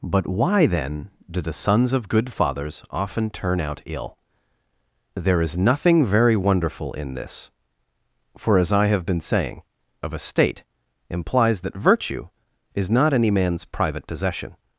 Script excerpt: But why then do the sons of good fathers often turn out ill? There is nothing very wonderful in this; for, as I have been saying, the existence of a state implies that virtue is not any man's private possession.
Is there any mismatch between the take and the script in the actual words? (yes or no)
yes